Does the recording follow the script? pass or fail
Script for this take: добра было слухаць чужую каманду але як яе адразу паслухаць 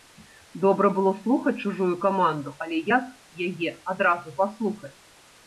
pass